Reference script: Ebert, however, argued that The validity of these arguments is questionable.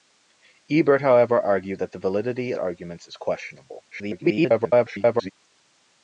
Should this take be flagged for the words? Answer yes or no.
yes